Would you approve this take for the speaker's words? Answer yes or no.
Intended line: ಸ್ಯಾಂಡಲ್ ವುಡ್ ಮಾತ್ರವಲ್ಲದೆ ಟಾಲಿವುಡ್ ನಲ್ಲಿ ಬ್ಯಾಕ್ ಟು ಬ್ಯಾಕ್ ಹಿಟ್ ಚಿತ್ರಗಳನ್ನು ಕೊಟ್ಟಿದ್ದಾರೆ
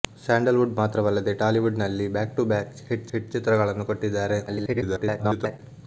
no